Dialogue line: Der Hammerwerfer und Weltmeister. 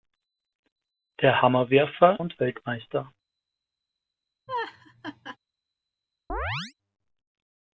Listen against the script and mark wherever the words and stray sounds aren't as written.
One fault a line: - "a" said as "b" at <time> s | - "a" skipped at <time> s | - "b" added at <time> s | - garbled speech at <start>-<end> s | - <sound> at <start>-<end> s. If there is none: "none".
- laugh at 4.5-5.4 s
- chirp at 6.3-6.7 s